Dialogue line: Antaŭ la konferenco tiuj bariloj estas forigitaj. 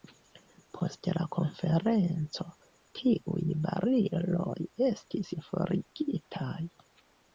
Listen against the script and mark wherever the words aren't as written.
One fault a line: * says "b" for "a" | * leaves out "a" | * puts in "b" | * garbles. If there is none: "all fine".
* says "Post" for "Antaŭ"
* says "estis" for "estas"